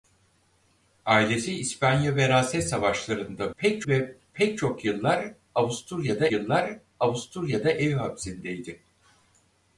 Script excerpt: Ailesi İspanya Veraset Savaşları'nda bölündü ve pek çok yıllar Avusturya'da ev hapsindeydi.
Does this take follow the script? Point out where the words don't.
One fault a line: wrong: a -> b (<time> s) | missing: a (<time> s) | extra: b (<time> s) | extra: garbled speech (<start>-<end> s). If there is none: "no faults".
wrong: bölündü -> pek (3.6 s)
extra: yıllar Avusturya'da (6.3 s)